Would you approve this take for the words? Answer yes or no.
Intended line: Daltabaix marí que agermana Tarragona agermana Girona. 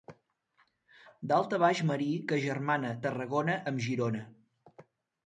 no